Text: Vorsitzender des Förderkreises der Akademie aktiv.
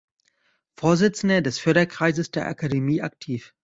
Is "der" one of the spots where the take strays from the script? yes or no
no